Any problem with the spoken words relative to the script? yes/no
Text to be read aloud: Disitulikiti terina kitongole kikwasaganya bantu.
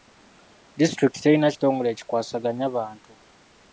no